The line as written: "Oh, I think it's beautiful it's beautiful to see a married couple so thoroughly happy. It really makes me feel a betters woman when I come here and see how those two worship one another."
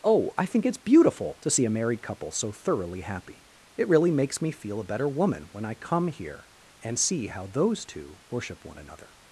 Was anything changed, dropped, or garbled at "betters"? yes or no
yes